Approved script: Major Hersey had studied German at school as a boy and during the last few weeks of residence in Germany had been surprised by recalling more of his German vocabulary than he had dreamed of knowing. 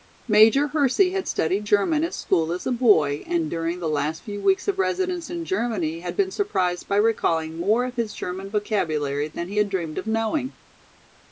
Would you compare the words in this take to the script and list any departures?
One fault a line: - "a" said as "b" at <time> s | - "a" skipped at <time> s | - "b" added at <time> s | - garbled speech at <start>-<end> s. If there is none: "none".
none